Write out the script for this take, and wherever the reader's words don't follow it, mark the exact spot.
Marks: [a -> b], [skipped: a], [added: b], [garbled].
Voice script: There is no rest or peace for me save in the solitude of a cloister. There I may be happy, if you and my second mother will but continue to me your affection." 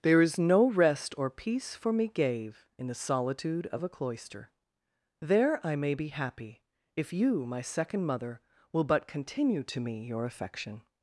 There is no rest or peace for me [save -> gave] in the solitude of a cloister. There I may be happy, if you [skipped: and] my second mother will but continue to me your affection."